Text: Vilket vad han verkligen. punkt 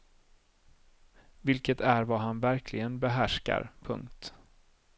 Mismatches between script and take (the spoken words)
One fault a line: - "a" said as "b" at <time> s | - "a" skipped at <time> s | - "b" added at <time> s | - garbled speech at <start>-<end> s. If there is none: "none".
- "är" added at 1.8 s
- "behärskar" added at 3.0 s